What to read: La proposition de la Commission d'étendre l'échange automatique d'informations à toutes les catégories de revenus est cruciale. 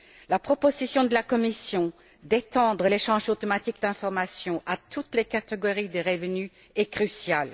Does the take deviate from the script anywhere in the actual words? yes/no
no